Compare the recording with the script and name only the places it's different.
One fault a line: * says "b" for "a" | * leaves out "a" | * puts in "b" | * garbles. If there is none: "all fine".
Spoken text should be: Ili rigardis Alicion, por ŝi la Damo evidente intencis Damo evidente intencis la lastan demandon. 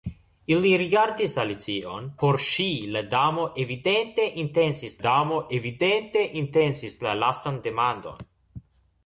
all fine